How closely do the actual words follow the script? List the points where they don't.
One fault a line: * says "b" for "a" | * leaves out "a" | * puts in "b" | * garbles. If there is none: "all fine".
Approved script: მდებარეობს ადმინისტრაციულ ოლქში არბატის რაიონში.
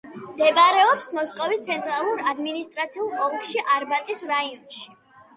* puts in "მოსკოვის ცენტრალურ"